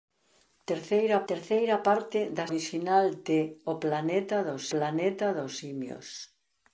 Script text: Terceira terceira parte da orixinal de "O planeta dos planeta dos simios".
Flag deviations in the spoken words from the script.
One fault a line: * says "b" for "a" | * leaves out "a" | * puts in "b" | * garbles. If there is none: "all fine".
all fine